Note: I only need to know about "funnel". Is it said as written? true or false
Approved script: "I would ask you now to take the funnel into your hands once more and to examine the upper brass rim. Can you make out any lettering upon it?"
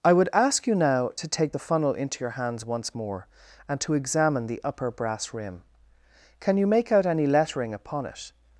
true